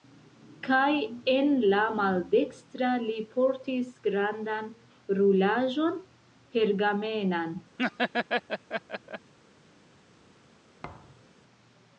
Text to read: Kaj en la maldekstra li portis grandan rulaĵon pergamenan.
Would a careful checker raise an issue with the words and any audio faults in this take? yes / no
yes